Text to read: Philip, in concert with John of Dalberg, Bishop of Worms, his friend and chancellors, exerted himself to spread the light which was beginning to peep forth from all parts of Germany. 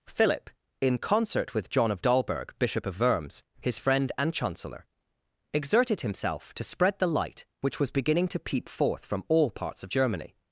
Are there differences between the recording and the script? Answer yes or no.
yes